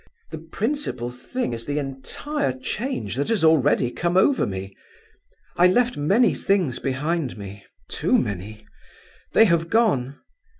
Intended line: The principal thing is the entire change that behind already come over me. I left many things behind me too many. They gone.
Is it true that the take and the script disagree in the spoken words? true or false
true